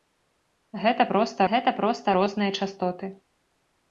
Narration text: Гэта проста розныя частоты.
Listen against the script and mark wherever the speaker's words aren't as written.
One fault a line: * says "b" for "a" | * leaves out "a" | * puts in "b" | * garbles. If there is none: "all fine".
* puts in "гэта проста"